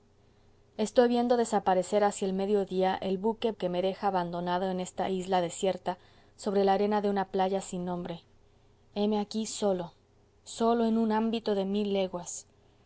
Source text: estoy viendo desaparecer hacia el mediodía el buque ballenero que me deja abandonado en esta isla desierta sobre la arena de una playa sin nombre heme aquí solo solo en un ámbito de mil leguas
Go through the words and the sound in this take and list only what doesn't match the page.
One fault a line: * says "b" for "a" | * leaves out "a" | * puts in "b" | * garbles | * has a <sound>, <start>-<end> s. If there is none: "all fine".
* leaves out "ballenero"